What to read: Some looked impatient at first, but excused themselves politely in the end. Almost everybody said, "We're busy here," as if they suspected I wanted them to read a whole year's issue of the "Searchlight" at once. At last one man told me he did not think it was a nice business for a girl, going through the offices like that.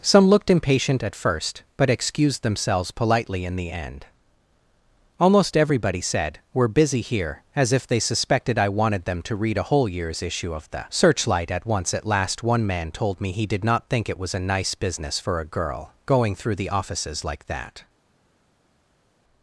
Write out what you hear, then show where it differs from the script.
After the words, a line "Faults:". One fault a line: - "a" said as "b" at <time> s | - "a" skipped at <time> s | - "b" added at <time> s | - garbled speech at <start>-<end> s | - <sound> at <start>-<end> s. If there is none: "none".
Some looked impatient at first, but excused themselves politely in the end. Almost everybody said, "We're busy here," as if they suspected I wanted them to read a whole year's issue of the "Searchlight" at once. At last one man told me he did not think it was a nice business for a girl, going through the offices like that.
Faults:
none